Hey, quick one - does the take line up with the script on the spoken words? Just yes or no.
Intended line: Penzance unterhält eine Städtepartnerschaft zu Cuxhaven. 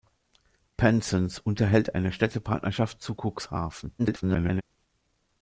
no